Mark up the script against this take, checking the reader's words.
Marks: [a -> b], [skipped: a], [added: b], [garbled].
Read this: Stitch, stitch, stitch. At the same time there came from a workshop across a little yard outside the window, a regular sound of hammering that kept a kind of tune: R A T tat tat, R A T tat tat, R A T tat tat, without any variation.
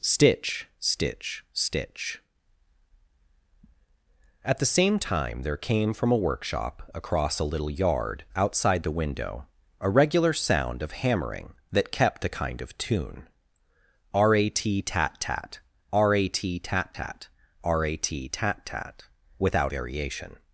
Stitch, stitch, stitch. At the same time there came from a workshop across a little yard outside the window, a regular sound of hammering that kept a kind of tune: R A T tat tat, R A T tat tat, R A T tat tat, without [skipped: any] variation.